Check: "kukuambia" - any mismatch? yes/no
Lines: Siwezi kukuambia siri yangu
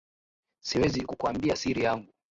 no